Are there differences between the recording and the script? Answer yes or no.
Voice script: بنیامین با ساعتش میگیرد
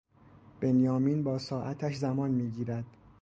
yes